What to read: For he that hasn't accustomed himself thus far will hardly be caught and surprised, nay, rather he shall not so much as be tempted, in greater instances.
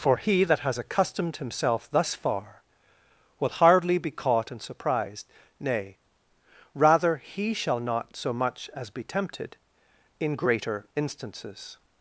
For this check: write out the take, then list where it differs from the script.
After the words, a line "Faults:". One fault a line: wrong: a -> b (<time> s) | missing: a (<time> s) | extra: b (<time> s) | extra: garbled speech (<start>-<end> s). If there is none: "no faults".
For he that has accustomed himself thus far will hardly be caught and surprised, nay, rather he shall not so much as be tempted, in greater instances.
Faults:
wrong: hasn't -> has (0.6 s)